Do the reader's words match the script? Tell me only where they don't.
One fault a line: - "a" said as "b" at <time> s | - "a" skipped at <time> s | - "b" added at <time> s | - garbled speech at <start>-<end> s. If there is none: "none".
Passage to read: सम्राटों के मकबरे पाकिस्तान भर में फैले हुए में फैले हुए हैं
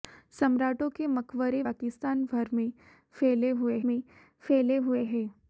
none